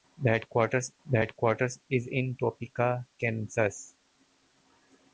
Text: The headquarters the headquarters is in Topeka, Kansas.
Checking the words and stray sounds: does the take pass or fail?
pass